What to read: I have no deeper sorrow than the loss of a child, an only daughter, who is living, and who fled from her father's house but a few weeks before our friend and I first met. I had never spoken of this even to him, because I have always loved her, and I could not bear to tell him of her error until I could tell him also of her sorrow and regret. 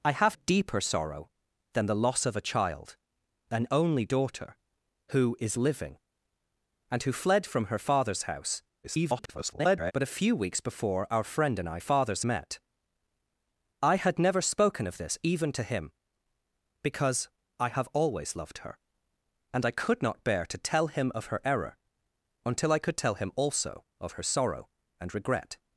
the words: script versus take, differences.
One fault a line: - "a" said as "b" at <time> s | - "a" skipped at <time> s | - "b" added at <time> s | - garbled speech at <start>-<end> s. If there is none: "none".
- "no" skipped at 0.3 s
- garbled speech at 8.8-9.9 s
- "first" said as "father's" at 11.8 s